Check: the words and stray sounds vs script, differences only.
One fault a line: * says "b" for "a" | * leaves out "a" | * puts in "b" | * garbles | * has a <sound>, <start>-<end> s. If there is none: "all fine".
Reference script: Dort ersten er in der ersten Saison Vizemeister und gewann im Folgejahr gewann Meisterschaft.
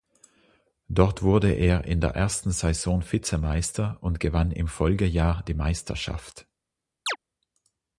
* says "wurde" for "ersten"
* says "die" for "gewann"
* has a chirp, 7.1-7.2 s